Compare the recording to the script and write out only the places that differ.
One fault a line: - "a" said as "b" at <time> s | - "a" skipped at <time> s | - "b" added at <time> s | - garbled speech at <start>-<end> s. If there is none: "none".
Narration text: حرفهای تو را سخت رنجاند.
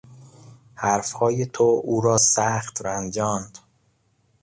- "او" added at 1.8 s